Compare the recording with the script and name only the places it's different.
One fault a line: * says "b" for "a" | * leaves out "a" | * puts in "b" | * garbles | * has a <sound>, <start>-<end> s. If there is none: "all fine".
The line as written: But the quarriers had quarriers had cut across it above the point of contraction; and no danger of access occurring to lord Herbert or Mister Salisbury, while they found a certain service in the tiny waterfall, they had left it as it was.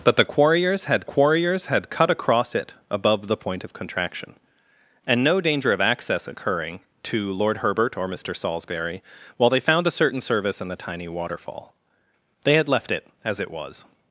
all fine